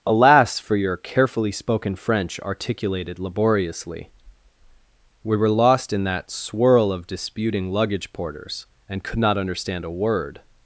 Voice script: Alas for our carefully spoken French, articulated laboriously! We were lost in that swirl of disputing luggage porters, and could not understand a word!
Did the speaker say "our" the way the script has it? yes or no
no